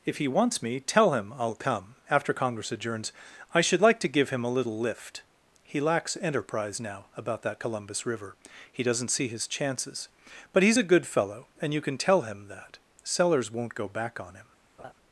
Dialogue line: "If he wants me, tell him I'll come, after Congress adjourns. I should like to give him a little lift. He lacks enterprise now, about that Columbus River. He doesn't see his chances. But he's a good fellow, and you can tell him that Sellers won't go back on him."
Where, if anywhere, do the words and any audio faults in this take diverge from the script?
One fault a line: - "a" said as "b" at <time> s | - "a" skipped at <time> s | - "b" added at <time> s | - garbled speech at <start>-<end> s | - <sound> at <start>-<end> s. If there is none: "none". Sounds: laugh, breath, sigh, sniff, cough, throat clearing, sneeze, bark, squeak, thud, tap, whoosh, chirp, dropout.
- laugh at 14.8-14.9 s